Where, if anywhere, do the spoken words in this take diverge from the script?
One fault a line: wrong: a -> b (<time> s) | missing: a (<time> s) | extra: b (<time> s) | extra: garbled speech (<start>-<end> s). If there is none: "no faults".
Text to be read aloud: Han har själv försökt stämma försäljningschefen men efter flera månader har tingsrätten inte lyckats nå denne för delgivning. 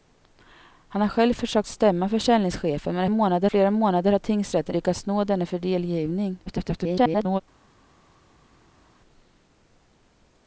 wrong: efter -> månader (3.1 s)
missing: inte (4.8 s)
extra: garbled speech (6.5-7.4 s)